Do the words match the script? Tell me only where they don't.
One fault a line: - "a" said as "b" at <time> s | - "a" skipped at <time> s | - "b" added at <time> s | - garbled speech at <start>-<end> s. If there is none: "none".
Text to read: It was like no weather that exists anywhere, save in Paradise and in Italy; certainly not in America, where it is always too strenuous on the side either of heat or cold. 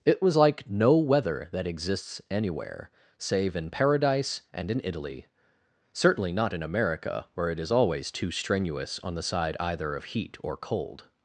none